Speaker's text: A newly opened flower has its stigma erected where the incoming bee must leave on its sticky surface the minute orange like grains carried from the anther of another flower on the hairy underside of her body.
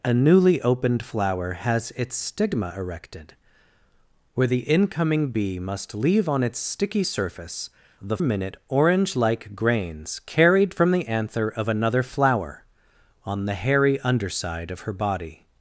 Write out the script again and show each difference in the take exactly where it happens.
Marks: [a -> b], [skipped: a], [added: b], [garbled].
A newly opened flower has its stigma erected where the incoming bee must leave on its sticky surface the minute orange like grains carried from the anther of another flower on the hairy underside of her body.